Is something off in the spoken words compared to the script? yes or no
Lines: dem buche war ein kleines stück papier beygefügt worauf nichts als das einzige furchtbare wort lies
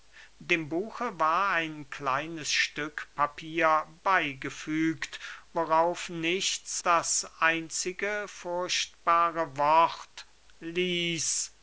yes